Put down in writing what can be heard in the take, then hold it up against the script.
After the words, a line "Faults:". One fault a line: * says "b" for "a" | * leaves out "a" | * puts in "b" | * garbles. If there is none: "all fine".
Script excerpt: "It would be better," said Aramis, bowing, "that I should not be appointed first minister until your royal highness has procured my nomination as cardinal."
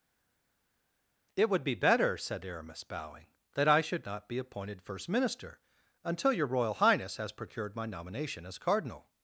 "It would be better," said Aramis, bowing, "that I should not be appointed first minister until your royal highness has procured my nomination as cardinal."
Faults:
all fine